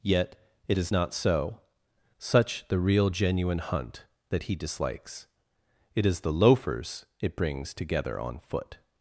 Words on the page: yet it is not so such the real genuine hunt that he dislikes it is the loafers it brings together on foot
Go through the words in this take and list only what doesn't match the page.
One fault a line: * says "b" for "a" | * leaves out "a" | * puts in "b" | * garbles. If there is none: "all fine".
all fine